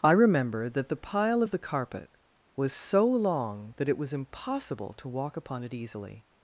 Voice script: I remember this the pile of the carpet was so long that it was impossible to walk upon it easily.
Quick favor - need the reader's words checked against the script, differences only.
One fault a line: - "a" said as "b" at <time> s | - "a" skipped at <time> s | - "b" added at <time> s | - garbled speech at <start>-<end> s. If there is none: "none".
- "this" said as "that" at 0.7 s